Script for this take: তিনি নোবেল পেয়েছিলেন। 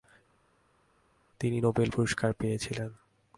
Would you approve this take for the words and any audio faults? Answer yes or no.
no